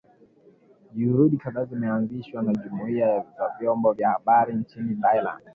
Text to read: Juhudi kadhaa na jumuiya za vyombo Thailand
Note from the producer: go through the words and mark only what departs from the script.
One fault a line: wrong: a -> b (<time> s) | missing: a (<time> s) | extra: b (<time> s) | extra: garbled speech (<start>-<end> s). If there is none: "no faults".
extra: zimeanzishwa (1.6 s)
extra: vya habari nchini (3.9 s)